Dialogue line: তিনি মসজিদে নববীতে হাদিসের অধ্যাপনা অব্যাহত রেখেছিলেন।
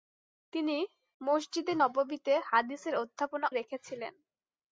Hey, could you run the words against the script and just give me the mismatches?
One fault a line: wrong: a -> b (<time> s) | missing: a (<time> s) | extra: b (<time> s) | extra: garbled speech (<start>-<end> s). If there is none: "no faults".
missing: অব্যাহত (3.5 s)